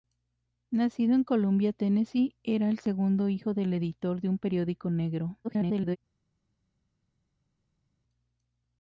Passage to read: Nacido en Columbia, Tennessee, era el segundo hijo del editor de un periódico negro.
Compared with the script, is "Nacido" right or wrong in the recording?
right